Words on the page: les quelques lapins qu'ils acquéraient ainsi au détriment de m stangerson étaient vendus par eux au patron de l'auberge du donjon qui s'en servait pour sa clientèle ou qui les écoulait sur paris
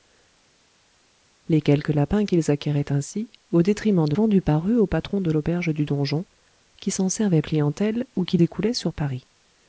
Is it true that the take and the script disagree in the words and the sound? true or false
true